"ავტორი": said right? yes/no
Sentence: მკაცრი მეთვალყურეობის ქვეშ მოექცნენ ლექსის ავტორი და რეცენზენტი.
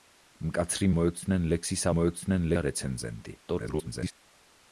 no